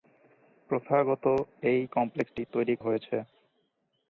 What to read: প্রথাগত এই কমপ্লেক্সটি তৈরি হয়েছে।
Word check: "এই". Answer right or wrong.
right